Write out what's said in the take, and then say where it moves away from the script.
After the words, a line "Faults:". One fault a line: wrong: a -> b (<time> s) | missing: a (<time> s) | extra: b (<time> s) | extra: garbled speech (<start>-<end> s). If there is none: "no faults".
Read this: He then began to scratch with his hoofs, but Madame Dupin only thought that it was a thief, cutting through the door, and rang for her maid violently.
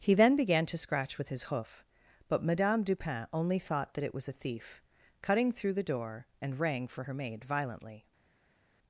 He then began to scratch with his hoof, but Madame Dupin only thought that it was a thief, cutting through the door, and rang for her maid violently.
Faults:
wrong: hoofs -> hoof (1.4 s)